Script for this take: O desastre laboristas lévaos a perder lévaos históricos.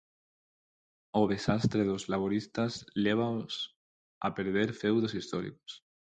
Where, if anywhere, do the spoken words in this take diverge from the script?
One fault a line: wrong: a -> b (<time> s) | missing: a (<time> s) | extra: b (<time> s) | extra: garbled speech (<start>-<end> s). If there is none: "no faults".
extra: dos (1.8 s)
wrong: lévaos -> feudos (4.7 s)